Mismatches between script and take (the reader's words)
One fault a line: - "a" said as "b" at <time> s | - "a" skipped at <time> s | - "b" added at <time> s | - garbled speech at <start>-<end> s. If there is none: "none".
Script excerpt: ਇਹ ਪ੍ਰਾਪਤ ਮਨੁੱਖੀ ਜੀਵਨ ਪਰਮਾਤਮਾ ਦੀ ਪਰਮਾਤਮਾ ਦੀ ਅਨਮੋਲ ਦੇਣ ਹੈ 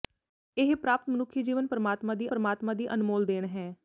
none